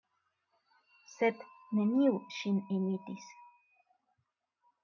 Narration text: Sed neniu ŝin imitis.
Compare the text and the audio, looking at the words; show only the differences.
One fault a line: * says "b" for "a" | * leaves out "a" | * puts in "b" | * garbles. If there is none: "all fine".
all fine